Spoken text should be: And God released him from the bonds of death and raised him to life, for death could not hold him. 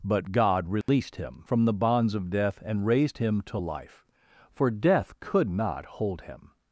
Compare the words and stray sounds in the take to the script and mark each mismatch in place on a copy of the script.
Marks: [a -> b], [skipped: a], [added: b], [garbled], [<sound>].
[And -> But] God released [dropout] him from the bonds of death and raised him to life, for death could not hold him.